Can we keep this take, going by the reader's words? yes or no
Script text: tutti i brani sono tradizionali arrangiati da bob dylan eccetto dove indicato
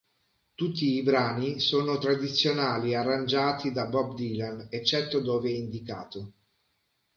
yes